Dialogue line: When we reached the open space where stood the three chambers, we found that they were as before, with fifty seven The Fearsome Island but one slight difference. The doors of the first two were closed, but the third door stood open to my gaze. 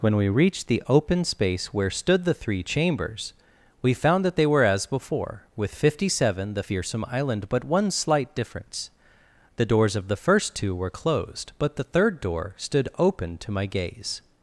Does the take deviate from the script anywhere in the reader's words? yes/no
no